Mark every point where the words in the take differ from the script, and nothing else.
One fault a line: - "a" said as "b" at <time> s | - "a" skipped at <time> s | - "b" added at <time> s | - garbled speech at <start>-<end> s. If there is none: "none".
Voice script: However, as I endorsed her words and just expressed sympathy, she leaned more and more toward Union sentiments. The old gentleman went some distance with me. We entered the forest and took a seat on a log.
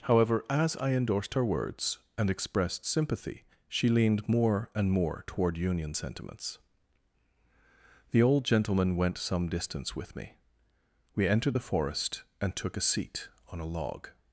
- "just" skipped at 2.3 s